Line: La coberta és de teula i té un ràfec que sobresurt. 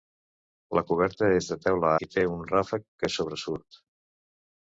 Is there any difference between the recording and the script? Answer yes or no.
no